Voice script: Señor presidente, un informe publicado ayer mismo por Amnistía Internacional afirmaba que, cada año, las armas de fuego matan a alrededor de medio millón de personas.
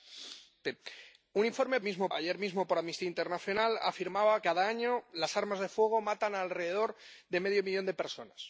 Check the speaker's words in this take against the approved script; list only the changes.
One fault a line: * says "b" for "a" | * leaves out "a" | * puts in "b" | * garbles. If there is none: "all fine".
* says "mismo" for "publicado"
* leaves out "que"